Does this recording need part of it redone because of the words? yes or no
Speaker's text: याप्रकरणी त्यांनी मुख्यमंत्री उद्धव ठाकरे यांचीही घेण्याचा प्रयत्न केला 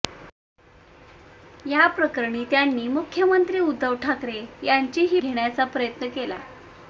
no